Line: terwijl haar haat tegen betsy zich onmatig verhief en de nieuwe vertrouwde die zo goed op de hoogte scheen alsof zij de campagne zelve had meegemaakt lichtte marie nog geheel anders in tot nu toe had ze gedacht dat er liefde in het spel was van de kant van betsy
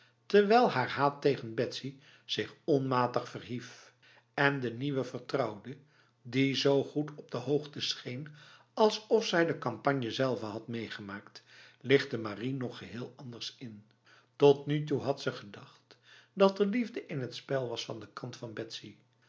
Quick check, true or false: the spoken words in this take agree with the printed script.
true